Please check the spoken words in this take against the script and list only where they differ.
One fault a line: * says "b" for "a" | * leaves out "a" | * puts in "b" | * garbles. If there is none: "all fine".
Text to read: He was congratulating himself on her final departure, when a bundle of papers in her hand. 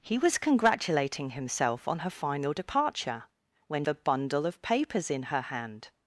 all fine